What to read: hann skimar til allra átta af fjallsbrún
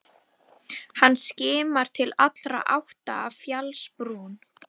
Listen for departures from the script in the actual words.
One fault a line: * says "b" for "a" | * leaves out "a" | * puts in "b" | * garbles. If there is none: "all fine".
all fine